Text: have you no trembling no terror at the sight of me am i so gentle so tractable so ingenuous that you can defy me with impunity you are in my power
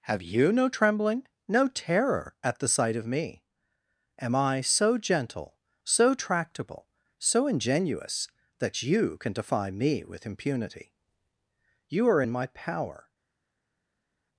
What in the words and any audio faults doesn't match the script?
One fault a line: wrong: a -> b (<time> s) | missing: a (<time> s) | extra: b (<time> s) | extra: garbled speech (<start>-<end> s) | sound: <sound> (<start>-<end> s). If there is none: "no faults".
no faults